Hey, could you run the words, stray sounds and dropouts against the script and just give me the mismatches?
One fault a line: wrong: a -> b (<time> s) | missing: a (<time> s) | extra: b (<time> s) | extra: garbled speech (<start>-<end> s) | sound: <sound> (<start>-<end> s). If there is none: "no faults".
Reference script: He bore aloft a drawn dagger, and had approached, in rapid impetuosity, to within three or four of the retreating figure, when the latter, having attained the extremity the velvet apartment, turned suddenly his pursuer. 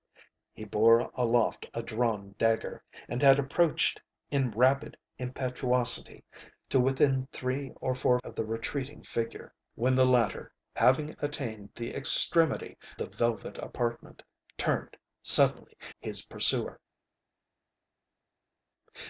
no faults